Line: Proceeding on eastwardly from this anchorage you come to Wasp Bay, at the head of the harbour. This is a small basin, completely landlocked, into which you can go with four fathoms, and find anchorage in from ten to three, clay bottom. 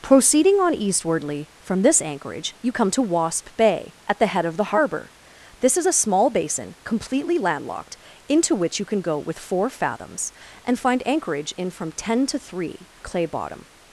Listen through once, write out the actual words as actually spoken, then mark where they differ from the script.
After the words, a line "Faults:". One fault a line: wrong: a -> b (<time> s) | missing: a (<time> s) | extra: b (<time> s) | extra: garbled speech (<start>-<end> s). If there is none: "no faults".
Proceeding on eastwardly from this anchorage you come to Wasp Bay, at the head of the harbour. This is a small basin, completely landlocked, into which you can go with four fathoms, and find anchorage in from ten to three, clay bottom.
Faults:
no faults